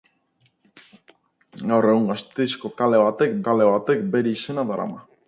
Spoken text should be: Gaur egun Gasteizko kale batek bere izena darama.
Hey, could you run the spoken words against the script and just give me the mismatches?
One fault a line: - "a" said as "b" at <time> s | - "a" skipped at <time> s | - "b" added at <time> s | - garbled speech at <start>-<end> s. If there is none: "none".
- "kale batek" added at 3.5 s